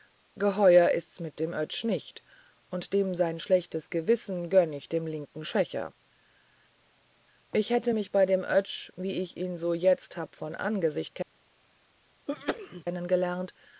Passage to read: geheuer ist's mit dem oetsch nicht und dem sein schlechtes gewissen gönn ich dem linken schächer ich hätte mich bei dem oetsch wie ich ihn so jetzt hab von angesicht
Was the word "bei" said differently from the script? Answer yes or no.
no